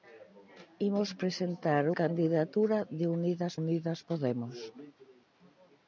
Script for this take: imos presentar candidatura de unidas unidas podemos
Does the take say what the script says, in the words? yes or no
yes